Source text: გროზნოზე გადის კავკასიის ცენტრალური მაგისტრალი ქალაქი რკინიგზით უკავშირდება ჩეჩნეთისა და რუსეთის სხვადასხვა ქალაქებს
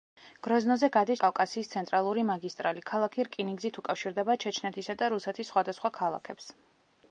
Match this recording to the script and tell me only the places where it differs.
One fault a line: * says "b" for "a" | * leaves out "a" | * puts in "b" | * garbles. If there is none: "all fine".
all fine